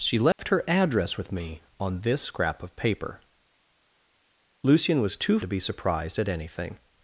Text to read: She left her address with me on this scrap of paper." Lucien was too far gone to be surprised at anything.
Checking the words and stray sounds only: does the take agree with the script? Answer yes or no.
no